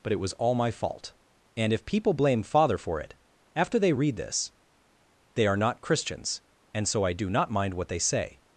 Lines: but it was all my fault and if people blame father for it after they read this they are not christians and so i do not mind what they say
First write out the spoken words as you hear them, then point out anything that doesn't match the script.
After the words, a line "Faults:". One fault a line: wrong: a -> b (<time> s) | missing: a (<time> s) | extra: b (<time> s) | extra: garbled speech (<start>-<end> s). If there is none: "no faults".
but it was all my fault and if people blame father for it after they read this they are not christians and so i do not mind what they say
Faults:
no faults